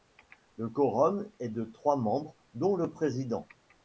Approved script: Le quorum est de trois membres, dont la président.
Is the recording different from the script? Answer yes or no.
yes